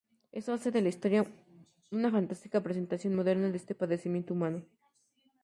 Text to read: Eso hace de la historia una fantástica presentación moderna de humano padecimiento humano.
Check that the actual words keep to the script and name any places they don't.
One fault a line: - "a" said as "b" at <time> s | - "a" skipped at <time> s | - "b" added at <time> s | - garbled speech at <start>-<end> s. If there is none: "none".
- "humano" said as "este" at 3.6 s